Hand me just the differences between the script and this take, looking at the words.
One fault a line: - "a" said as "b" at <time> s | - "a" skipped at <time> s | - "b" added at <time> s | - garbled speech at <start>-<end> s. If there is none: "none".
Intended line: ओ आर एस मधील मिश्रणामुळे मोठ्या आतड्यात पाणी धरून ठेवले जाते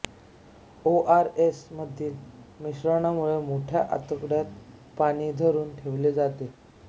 none